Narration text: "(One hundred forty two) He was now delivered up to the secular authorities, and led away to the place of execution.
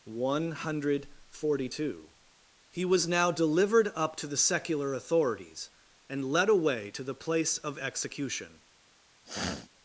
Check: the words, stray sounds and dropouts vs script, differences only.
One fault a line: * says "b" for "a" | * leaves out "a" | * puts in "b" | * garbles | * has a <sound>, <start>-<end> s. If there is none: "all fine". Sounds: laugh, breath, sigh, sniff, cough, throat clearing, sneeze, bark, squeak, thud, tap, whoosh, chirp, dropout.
* has a sniff, 9.2-9.7 s